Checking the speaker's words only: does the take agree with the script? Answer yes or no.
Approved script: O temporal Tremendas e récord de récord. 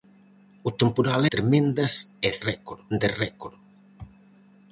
yes